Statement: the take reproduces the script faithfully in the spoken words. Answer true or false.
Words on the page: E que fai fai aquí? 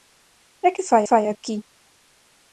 true